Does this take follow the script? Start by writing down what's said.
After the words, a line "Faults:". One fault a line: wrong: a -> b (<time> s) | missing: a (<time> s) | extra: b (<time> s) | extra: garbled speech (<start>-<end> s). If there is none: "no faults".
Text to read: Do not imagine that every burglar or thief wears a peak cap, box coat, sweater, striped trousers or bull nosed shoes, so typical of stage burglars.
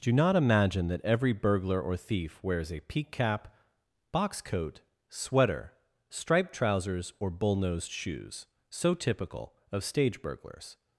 Do not imagine that every burglar or thief wears a peak cap, box coat, sweater, striped trousers or bull nosed shoes, so typical of stage burglars.
Faults:
no faults